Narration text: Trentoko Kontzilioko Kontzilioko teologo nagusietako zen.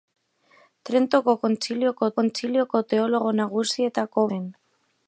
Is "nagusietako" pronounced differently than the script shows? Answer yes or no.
no